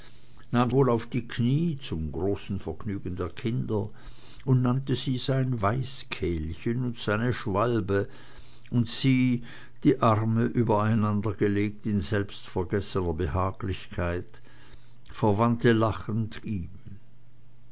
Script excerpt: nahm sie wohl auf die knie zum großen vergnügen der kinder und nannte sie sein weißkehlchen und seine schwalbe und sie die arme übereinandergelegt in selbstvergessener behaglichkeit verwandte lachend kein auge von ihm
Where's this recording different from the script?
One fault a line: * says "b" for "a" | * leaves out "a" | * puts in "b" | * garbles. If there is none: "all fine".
* leaves out "sie"
* leaves out "kein auge von"